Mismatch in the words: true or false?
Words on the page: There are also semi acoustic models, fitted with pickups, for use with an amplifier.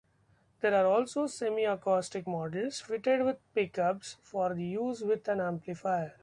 false